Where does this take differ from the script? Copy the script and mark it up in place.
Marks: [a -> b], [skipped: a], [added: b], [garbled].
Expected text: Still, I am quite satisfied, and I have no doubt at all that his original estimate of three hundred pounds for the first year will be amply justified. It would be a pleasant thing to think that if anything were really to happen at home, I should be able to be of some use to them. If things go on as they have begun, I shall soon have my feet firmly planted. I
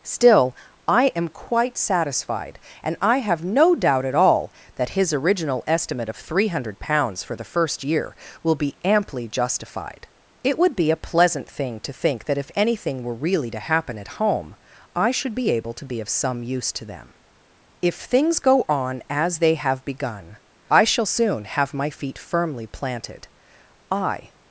Still, I am quite satisfied, and I have no doubt at all that his original estimate of three hundred pounds for the first year will be amply justified. It would be a pleasant thing to think that if anything were really to happen at home, I should be able to be of some use to them. If things go on as they have begun, I shall soon have my feet firmly planted. I